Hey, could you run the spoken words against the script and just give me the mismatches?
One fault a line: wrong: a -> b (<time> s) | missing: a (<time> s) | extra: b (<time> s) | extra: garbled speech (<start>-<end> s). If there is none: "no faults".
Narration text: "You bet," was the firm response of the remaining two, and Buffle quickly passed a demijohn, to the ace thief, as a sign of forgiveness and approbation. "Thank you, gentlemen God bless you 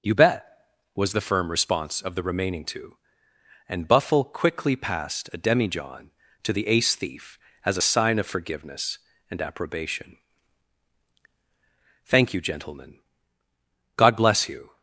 no faults